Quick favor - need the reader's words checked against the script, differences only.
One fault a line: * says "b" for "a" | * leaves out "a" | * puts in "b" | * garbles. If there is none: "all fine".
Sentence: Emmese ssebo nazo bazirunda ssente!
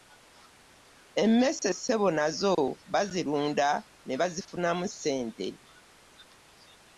* puts in "ne bazifunamu"